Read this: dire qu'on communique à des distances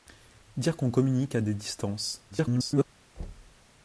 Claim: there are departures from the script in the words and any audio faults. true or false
true